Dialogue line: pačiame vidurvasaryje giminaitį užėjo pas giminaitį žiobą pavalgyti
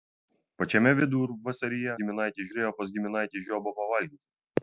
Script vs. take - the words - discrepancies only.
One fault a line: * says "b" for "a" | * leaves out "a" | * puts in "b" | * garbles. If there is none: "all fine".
all fine